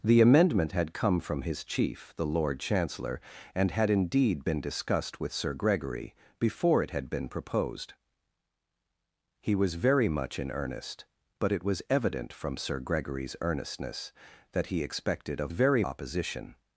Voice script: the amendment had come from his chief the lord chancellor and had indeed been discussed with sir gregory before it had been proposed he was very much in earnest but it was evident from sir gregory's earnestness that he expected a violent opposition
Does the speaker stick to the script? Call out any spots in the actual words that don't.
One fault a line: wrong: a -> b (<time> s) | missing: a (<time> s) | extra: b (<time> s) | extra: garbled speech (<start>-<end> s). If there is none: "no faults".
wrong: violent -> very (15.5 s)